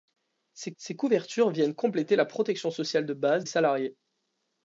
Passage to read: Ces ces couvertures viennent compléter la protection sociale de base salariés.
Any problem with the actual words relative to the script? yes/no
no